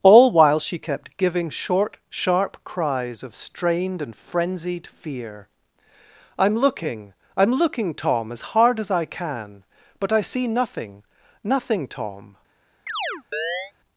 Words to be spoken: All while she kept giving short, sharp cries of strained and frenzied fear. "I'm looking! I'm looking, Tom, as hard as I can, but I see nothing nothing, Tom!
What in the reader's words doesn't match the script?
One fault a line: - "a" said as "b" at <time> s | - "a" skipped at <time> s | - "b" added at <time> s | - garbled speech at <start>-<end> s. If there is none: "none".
none